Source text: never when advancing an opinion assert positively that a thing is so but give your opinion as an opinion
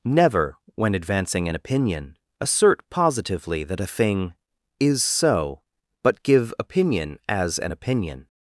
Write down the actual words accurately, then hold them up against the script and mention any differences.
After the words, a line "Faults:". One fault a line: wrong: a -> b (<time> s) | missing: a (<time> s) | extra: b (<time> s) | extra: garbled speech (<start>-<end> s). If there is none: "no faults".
never when advancing an opinion assert positively that a thing is so but give opinion as an opinion
Faults:
missing: your (6.5 s)